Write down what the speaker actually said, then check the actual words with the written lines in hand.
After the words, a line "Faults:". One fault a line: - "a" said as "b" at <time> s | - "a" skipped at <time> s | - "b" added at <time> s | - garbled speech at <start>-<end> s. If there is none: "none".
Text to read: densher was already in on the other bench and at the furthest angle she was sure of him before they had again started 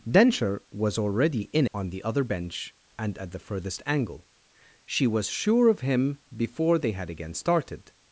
densher was already in on the other bench and at the furthest angle she was sure of him before they had again started
Faults:
none